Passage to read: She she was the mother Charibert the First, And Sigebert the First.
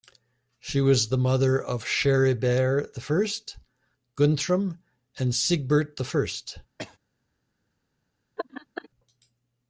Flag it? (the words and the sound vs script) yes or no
yes